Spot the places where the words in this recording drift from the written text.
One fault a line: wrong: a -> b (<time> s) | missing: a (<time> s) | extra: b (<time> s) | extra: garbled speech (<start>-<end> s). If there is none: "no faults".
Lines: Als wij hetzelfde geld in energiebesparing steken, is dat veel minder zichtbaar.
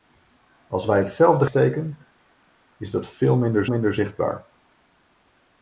missing: geld in energiebesparing (1.4 s)
extra: minder (3.6 s)